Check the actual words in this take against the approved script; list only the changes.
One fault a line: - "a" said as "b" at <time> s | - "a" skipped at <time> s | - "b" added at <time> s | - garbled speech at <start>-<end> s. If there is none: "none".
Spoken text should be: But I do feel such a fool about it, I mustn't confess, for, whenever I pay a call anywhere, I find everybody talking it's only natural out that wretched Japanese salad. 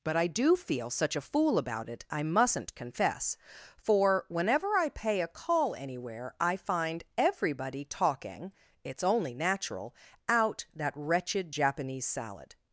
none